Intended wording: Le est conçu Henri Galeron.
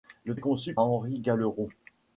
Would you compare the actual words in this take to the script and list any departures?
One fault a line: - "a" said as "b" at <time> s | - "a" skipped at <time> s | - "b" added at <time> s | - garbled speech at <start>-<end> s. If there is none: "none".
none